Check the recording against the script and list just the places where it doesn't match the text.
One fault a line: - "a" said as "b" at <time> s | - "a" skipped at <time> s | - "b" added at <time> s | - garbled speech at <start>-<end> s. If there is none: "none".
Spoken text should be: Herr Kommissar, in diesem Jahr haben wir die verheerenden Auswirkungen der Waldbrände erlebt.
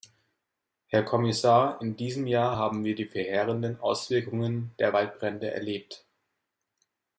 none